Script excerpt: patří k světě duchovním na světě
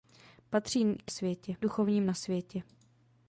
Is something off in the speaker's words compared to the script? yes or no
no